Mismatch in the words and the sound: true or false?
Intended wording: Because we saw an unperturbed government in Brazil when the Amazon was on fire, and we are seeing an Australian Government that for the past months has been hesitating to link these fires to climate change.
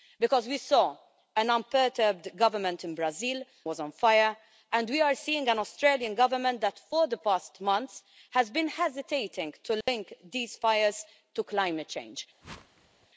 true